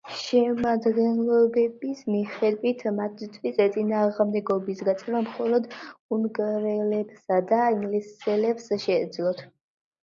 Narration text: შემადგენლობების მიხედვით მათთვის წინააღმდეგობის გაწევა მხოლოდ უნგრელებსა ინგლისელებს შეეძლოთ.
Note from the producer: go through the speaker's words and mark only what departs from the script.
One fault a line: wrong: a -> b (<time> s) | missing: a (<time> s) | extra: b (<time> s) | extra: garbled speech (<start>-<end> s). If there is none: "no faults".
extra: და (7.5 s)